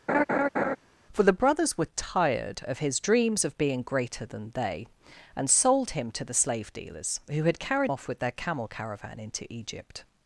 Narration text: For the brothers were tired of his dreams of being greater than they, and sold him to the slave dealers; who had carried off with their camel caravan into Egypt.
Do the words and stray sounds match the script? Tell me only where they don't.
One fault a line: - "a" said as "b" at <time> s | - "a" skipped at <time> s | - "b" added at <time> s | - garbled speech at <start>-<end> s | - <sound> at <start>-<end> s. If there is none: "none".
- laugh at 0.1-0.8 s